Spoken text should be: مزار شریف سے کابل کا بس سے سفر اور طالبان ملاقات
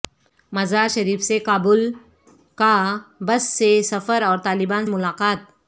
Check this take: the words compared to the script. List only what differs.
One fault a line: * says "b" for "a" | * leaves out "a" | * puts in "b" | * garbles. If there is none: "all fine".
all fine